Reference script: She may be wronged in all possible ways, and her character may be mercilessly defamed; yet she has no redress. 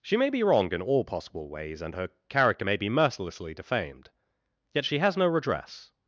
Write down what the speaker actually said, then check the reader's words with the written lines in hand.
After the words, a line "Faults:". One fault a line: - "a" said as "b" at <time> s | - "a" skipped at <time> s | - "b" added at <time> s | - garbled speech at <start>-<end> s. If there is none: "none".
She may be wrong in all possible ways, and her character may be mercilessly defamed; yet she has no redress.
Faults:
- "wronged" said as "wrong" at 0.4 s